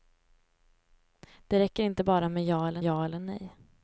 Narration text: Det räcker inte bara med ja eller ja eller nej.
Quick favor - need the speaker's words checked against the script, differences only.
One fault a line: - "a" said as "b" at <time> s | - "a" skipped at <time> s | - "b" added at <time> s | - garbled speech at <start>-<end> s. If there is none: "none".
none